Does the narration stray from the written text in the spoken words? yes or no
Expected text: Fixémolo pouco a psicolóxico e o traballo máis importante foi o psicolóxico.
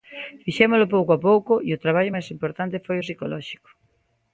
yes